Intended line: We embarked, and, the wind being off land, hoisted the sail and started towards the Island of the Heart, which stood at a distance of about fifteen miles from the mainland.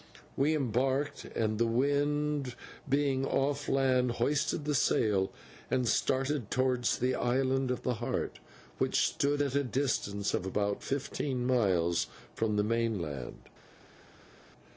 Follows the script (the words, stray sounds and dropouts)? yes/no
yes